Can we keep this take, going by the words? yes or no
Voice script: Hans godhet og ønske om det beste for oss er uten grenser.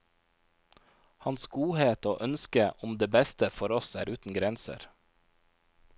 yes